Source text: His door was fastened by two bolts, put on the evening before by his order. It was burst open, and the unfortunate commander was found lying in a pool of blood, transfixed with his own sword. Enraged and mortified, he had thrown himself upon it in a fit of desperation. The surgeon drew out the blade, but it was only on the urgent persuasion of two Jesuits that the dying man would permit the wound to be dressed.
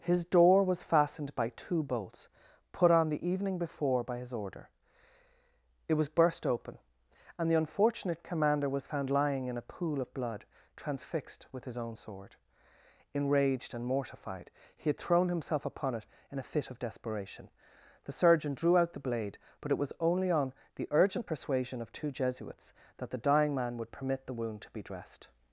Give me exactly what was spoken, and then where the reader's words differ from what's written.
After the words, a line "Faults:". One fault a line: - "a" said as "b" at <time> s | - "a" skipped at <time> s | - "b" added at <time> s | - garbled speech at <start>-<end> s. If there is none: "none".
His door was fastened by two bolts, put on the evening before by his order. It was burst open, and the unfortunate commander was found lying in a pool of blood, transfixed with his own sword. Enraged and mortified, he had thrown himself upon it in a fit of desperation. The surgeon drew out the blade, but it was only on the urgent persuasion of two Jesuits that the dying man would permit the wound to be dressed.
Faults:
none